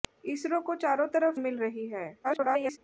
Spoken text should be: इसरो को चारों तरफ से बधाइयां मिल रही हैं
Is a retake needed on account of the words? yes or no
yes